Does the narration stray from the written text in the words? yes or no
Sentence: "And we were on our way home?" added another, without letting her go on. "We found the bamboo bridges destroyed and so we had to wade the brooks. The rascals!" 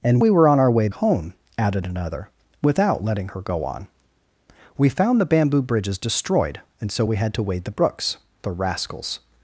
no